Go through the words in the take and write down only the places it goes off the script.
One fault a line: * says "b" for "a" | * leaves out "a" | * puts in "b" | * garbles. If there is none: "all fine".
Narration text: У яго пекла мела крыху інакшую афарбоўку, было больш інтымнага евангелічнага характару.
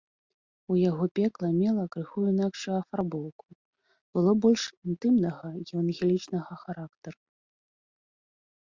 all fine